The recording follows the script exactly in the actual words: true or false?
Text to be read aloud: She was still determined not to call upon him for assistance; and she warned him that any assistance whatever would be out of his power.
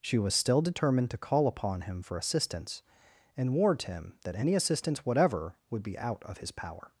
false